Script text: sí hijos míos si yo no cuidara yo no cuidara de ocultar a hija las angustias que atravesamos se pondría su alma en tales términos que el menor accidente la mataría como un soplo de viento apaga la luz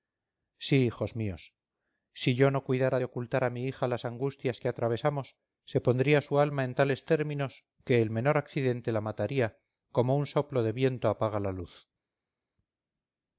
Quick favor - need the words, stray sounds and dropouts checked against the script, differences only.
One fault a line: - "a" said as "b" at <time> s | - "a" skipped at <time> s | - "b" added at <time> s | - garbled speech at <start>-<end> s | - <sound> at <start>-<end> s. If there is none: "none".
- "yo no cuidara" skipped at 3.0 s
- "mi" added at 3.5 s